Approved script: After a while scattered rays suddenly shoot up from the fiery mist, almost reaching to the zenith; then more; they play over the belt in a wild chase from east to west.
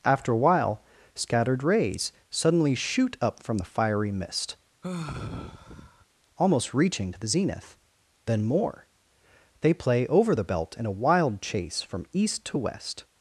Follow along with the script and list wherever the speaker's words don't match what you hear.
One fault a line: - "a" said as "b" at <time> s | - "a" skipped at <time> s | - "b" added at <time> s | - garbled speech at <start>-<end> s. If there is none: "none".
none